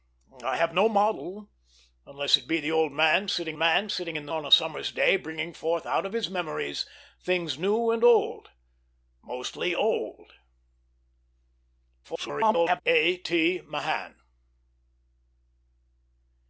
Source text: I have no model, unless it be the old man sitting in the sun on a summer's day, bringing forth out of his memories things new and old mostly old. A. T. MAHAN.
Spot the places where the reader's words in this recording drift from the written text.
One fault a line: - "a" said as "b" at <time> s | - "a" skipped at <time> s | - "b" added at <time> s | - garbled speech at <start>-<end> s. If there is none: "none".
- "man sitting" added at 3.5 s
- "sun" skipped at 4.3 s
- garbled speech at 12.0-12.8 s